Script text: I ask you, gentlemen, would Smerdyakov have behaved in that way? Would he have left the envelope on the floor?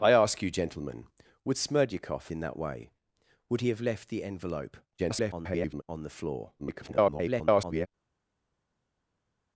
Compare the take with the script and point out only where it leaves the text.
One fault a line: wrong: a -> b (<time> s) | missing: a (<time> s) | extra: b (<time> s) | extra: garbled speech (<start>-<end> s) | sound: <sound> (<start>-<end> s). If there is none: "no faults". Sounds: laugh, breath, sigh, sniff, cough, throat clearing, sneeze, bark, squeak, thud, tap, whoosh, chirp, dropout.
missing: have behaved (2.3 s)
extra: garbled speech (5.0-5.8 s)
extra: garbled speech (6.6-7.9 s)